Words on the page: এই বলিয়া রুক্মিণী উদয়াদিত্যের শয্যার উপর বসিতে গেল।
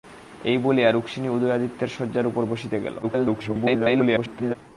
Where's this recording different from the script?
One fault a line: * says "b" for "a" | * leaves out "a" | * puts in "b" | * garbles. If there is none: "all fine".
* garbles